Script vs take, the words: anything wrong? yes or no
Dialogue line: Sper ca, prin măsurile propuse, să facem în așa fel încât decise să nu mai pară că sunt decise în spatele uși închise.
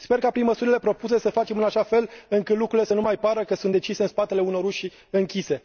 yes